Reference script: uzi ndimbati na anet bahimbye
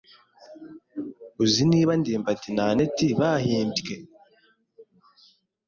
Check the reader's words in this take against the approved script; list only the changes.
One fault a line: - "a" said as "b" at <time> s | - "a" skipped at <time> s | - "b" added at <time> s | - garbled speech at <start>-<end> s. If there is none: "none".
- "niba" added at 1.7 s